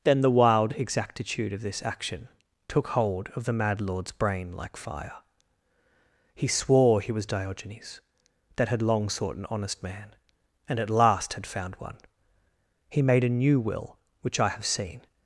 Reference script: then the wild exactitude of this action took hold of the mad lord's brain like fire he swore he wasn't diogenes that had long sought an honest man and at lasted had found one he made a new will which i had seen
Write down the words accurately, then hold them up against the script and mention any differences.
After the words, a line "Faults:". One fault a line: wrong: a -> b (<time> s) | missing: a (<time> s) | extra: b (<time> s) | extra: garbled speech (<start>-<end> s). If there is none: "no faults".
then the wild exactitude of this action took hold of the mad lord's brain like fire he swore he was diogenes that had long sought an honest man and at last had found one he made a new will which i have seen
Faults:
wrong: wasn't -> was (7.1 s)
wrong: lasted -> last (10.9 s)
wrong: had -> have (14.5 s)